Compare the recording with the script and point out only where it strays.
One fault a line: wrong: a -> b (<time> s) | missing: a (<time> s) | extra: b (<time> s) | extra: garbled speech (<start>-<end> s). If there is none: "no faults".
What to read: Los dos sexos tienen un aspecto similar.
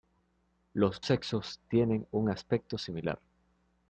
missing: dos (1.0 s)